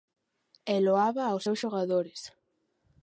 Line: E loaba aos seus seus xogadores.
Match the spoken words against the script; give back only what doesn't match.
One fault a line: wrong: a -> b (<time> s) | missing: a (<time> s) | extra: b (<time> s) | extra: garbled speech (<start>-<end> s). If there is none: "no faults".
missing: seus (1.6 s)